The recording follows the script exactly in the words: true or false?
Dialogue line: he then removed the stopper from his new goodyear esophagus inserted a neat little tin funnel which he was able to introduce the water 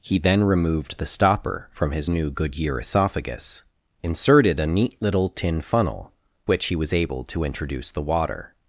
true